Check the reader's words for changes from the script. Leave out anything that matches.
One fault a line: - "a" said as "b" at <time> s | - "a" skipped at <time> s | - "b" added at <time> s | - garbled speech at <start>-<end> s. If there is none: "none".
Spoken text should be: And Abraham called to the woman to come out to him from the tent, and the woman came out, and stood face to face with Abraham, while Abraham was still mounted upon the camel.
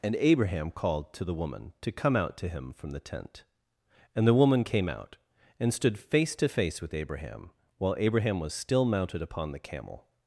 none